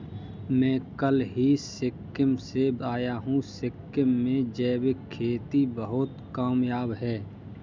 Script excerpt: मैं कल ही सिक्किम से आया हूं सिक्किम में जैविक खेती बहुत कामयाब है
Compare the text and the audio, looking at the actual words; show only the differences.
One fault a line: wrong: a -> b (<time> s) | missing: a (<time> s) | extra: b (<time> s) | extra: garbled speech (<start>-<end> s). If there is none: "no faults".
no faults